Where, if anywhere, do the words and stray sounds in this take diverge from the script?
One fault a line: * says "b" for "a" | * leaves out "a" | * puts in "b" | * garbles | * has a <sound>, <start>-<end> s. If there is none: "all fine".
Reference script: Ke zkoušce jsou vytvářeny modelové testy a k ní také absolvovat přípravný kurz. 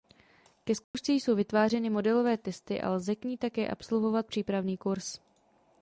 * has a dropout, 0.8-0.9 s
* puts in "lze"